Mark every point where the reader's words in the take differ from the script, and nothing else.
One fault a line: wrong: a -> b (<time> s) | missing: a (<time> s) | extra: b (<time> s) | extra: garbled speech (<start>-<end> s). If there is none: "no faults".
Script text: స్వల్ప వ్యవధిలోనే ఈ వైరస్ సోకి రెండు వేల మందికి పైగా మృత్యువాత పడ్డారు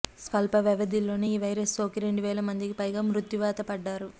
no faults